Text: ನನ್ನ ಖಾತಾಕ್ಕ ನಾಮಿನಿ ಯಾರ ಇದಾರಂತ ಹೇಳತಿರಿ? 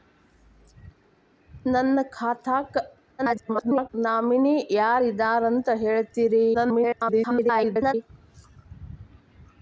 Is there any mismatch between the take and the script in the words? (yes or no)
yes